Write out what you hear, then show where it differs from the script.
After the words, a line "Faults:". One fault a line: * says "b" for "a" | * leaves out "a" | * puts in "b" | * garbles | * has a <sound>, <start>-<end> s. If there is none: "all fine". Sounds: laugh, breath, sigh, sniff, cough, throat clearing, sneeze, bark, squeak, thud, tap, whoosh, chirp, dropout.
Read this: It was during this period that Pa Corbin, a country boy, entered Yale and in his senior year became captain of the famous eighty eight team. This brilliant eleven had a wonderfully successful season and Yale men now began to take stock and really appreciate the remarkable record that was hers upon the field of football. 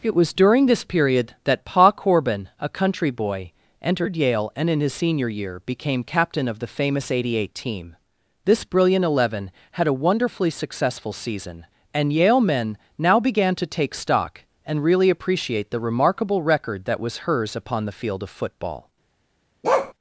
It was during this period that Pa Corbin, a country boy, entered Yale and in his senior year became captain of the famous eighty eight team. This brilliant eleven had a wonderfully successful season and Yale men now began to take stock and really appreciate the remarkable record that was hers upon the field of football.
Faults:
* has a bark, 19.6-19.9 s